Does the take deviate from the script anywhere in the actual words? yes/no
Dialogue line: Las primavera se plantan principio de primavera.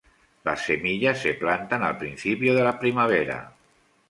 yes